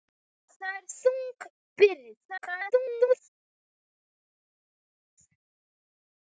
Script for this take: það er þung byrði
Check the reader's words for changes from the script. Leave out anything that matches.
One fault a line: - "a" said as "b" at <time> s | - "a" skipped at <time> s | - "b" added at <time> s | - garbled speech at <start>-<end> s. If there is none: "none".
- garbled speech at 2.2-3.2 s